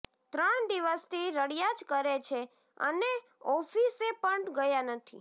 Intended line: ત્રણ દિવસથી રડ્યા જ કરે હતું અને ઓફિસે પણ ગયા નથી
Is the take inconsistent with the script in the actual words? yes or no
yes